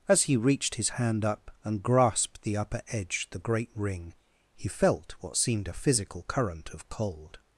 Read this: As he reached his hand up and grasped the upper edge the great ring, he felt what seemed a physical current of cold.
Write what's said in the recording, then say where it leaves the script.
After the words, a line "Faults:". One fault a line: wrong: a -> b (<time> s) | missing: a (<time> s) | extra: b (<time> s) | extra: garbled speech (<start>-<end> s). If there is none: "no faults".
As he reached his hand up and grasped the upper edge the great ring, he felt what seemed a physical current of cold.
Faults:
no faults